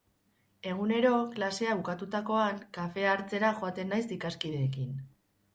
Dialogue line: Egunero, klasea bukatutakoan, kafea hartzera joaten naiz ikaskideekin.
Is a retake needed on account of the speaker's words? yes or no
no